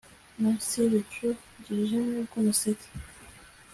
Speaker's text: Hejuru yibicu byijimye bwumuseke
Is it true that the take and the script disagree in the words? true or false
true